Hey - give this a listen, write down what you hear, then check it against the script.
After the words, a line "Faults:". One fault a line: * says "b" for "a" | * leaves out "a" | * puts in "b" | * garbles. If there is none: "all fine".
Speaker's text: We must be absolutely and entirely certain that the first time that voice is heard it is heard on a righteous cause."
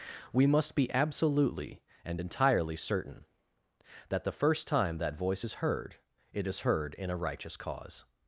We must be absolutely and entirely certain that the first time that voice is heard it is heard in a righteous cause."
Faults:
* says "in" for "on"